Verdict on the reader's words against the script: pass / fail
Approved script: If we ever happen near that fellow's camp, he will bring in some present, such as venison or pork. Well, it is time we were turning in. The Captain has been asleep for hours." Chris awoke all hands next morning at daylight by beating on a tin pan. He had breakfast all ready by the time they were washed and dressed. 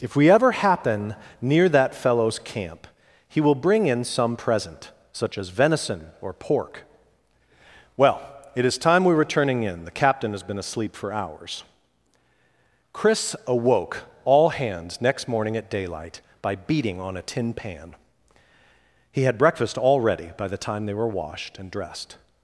pass